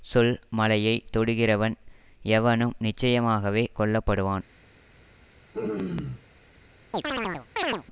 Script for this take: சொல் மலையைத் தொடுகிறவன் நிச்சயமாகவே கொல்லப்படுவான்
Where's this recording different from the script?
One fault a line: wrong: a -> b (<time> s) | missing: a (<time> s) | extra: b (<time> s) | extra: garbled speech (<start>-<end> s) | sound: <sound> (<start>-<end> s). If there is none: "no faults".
extra: எவனும் (2.3 s)
sound: throat clearing (5.5-6.2 s)
sound: chirp (6.9-7.8 s)